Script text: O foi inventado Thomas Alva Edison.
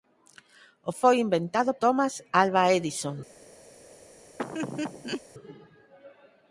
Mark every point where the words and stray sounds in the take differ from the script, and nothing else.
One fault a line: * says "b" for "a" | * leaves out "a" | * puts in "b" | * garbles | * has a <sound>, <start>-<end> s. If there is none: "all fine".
* has a laugh, 4.4-5.2 s